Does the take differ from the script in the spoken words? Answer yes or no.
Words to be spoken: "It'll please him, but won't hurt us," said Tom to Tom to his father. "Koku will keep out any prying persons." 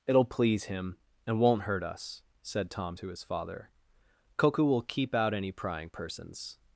yes